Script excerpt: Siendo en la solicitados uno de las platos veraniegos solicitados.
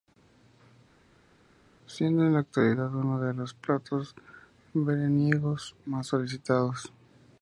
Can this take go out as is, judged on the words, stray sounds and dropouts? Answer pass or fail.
fail